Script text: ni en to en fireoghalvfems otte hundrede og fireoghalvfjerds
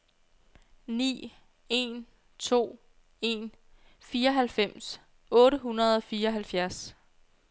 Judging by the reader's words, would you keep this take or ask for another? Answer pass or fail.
pass